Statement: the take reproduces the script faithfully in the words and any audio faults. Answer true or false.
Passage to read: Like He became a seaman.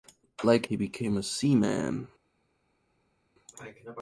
true